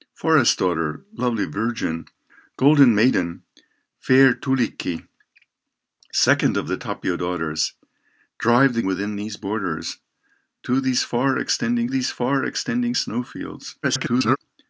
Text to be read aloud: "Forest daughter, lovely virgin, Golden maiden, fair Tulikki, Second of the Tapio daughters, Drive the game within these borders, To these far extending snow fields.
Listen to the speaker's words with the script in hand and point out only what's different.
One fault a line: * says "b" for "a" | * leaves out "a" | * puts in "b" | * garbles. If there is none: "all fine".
* leaves out "game"
* puts in "these far extending"
* garbles